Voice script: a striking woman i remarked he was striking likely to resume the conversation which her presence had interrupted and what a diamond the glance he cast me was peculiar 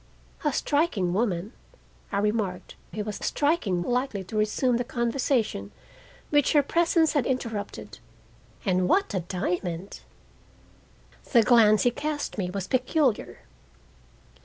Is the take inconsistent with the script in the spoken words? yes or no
no